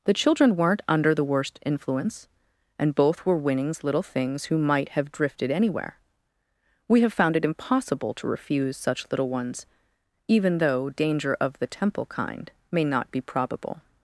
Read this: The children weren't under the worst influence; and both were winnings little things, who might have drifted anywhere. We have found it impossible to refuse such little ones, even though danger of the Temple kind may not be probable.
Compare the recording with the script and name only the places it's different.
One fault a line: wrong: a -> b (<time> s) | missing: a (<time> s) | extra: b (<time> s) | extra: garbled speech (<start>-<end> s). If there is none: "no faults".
no faults